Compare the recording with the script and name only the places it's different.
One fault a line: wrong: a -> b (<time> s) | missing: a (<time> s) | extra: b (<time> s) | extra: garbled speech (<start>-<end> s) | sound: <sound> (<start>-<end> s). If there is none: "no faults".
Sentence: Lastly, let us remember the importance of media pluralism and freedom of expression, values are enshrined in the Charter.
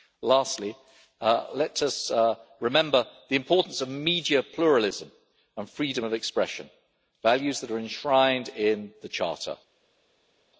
extra: that (7.6 s)